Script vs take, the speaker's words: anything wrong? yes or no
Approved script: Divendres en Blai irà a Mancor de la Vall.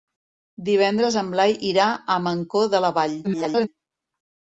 yes